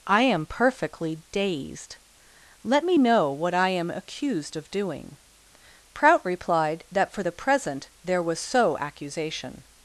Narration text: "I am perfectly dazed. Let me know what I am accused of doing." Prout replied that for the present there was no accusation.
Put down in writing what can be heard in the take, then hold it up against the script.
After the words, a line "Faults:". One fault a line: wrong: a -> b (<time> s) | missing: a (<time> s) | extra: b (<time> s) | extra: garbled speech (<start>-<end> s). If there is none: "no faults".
"I am perfectly dazed. Let me know what I am accused of doing." Prout replied that for the present there was so accusation.
Faults:
wrong: no -> so (8.4 s)